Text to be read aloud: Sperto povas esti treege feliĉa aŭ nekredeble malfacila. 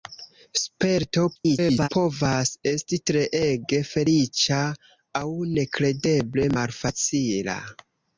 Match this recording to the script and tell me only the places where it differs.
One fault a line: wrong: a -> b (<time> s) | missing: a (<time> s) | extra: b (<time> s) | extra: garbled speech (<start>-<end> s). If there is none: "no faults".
extra: garbled speech (1.3-1.9 s)